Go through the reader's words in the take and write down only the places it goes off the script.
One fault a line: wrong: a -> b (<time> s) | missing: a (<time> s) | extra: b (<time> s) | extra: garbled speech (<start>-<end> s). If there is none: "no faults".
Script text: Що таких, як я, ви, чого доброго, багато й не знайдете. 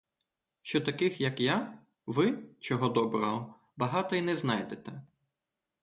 no faults